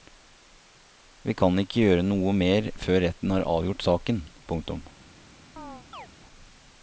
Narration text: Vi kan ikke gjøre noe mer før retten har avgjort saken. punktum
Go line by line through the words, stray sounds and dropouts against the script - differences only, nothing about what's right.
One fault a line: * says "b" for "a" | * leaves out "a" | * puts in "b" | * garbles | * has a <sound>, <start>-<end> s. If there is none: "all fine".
* has a chirp, 5.6-6.1 s